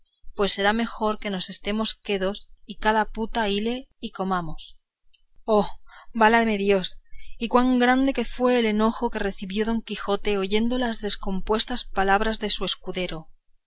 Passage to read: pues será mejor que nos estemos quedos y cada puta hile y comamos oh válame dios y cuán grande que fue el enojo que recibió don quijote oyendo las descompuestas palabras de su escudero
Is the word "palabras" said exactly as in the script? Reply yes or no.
yes